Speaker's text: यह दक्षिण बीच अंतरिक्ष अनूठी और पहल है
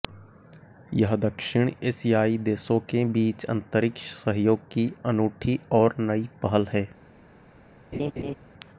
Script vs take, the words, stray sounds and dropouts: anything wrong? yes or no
yes